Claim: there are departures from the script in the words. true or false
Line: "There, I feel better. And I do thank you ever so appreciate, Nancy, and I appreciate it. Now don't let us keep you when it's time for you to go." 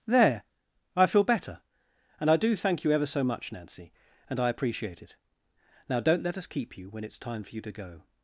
true